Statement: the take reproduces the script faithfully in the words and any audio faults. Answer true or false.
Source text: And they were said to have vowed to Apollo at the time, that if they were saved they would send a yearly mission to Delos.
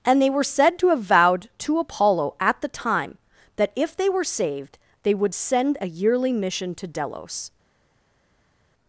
true